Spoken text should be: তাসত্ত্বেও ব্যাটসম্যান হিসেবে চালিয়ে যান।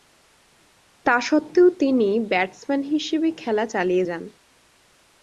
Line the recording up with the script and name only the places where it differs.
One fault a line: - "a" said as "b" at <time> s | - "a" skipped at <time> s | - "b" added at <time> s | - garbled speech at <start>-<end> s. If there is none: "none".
- "তিনি" added at 1.8 s
- "খেলা" added at 3.4 s